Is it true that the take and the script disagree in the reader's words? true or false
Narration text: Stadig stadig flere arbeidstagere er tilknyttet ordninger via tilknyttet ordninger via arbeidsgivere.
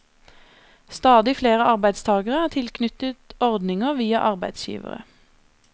true